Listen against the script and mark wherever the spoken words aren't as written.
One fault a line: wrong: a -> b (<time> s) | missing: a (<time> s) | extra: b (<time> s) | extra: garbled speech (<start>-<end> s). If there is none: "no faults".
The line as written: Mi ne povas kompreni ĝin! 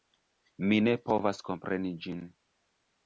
no faults